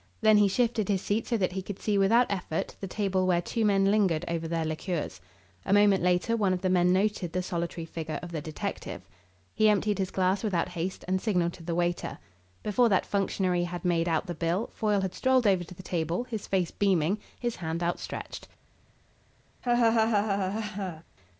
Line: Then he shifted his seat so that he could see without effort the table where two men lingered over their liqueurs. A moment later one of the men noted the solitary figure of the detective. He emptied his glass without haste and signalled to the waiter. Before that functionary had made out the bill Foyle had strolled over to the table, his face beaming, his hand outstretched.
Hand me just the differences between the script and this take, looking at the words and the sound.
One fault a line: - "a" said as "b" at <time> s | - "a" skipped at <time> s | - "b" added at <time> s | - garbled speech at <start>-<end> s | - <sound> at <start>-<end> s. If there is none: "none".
- laugh at 19.6-21.0 s